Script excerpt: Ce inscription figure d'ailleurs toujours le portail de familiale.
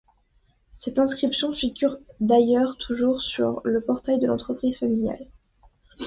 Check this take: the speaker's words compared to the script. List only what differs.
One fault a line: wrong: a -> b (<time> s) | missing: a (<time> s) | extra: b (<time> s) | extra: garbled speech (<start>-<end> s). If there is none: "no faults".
wrong: Ce -> Cette (0.7 s)
extra: sur (3.2 s)
extra: l'entreprise (4.3 s)